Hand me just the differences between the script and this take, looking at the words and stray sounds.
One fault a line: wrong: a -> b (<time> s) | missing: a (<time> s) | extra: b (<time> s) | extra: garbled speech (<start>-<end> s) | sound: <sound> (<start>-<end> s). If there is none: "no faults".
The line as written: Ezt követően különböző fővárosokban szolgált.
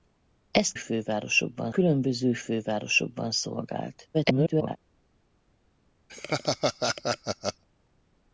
wrong: követően -> fővárosokban (0.7 s)
extra: garbled speech (4.1-4.8 s)
sound: laugh (6.1-7.6 s)